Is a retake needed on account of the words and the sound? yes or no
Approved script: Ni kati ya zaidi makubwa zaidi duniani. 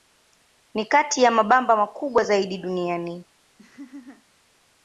yes